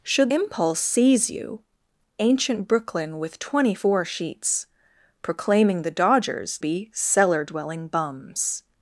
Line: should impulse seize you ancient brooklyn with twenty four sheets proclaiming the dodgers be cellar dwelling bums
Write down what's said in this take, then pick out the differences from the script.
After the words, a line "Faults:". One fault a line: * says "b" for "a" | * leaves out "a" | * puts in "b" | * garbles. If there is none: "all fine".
should impulse seize you ancient brooklyn with twenty four sheets proclaiming the dodgers be cellar dwelling bums
Faults:
all fine